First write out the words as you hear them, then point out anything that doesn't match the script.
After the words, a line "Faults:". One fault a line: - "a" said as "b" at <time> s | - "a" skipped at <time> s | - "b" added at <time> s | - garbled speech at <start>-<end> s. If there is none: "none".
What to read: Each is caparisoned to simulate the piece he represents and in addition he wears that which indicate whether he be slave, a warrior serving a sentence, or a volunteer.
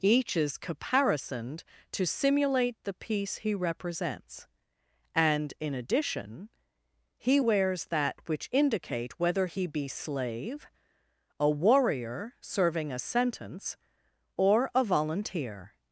Each is caparisoned to simulate the piece he represents and in addition he wears that which indicate whether he be slave, a warrior serving a sentence, or a volunteer.
Faults:
none